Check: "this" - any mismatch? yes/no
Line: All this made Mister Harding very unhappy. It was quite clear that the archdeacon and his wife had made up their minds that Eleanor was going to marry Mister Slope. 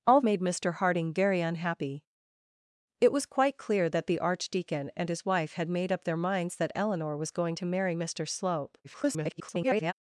yes